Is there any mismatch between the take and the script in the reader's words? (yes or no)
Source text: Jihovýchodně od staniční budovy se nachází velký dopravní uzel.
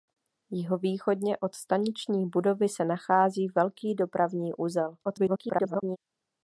yes